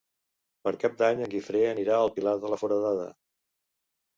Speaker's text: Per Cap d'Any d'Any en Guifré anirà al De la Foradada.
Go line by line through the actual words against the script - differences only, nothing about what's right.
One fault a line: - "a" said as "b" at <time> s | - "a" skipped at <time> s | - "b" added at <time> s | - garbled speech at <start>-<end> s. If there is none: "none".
- "d'Any" skipped at 1.2 s
- "Pilar" added at 2.2 s